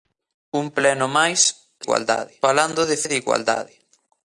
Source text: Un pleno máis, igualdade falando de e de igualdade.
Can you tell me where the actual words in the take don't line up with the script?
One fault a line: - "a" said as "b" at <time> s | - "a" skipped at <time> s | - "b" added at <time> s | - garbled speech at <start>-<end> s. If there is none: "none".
none